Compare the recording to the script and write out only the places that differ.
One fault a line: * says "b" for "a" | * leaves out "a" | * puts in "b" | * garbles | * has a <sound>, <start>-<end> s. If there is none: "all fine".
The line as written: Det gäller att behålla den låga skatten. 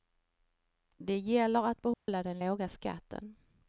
* has a dropout, 1.9-2.1 s